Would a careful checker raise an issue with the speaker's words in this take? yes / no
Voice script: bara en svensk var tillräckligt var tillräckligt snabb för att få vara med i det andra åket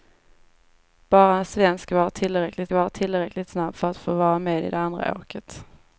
no